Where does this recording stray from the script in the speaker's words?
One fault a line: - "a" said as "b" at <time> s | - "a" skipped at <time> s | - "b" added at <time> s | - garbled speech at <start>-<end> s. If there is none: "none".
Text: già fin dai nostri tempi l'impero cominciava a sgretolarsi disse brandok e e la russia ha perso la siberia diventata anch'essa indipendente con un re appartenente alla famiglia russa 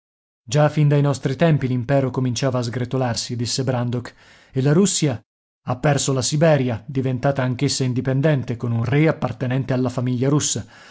- "e" skipped at 4.6 s